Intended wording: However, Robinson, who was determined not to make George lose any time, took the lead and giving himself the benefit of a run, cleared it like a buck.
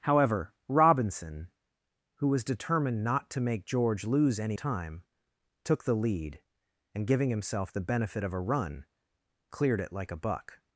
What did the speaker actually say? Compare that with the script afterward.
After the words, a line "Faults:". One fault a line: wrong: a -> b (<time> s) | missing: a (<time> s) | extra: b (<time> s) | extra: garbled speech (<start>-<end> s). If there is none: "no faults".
However, Robinson, who was determined not to make George lose any time, took the lead and giving himself the benefit of a run, cleared it like a buck.
Faults:
no faults